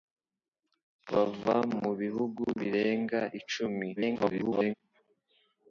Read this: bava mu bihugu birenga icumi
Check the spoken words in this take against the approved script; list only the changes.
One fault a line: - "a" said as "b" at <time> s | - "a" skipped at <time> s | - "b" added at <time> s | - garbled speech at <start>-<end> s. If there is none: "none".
- garbled speech at 4.0-4.7 s